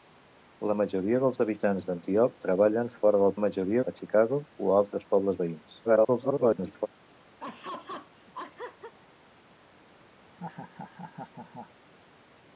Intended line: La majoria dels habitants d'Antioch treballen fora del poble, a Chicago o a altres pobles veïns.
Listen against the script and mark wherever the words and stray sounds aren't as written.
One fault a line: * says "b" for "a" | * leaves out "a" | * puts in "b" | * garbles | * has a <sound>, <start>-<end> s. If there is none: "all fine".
* says "majoria" for "poble"
* garbles
* has a laugh, 7.4-8.9 s
* has a laugh, 10.2-11.8 s